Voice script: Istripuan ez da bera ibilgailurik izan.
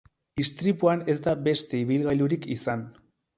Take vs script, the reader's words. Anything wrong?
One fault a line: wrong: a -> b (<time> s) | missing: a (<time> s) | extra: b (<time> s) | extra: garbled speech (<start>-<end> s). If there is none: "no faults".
wrong: bera -> beste (1.5 s)